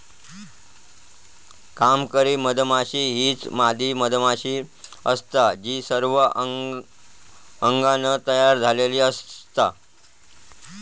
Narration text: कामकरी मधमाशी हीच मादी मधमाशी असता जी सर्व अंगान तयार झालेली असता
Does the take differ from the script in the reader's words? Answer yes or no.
no